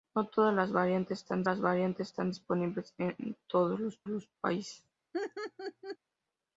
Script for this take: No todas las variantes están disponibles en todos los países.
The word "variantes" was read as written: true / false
true